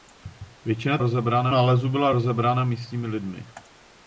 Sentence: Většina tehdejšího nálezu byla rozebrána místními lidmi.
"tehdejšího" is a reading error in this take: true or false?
true